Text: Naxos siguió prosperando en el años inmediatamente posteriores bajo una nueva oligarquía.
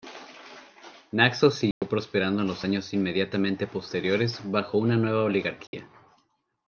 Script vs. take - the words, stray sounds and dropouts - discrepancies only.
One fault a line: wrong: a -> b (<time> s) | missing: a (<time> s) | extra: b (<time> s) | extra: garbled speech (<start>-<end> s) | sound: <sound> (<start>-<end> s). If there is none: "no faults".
sound: dropout (1.7-1.8 s)
wrong: el -> los (2.5 s)
sound: dropout (5.7-5.7 s)